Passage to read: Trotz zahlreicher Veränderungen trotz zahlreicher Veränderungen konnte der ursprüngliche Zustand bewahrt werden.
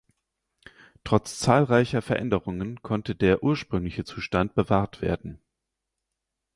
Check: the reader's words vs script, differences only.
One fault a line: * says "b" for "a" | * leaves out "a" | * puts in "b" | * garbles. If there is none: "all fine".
* leaves out "trotz zahlreicher Veränderungen"